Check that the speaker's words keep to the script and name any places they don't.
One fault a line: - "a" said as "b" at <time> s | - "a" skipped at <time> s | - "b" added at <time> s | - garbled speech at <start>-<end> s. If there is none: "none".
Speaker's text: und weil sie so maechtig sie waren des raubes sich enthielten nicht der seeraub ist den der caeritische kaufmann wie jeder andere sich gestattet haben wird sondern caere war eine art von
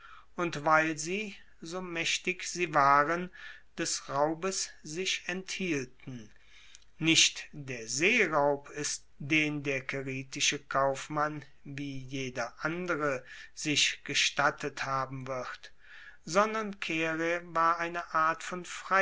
none